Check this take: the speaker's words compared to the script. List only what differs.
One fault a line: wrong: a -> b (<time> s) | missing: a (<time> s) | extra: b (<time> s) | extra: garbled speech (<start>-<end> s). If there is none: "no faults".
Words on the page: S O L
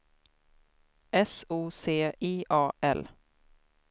extra: C I A (1.7 s)